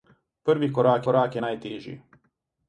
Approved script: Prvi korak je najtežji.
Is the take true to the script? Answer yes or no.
no